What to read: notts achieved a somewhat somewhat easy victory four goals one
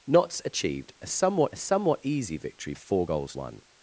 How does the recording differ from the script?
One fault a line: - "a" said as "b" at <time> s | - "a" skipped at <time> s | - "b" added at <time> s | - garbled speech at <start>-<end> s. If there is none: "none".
none